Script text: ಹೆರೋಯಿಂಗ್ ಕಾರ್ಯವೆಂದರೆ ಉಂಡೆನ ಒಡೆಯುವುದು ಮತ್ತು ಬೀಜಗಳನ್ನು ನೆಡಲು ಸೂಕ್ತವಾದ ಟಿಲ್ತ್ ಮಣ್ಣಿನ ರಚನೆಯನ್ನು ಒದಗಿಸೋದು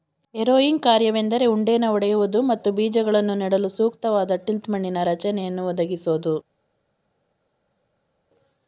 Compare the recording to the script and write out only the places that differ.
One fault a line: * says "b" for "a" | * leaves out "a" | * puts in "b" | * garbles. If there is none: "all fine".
all fine